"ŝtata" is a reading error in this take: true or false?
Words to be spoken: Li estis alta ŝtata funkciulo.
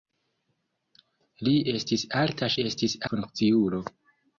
true